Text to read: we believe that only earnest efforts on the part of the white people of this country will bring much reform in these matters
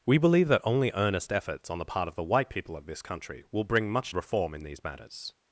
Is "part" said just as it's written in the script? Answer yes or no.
yes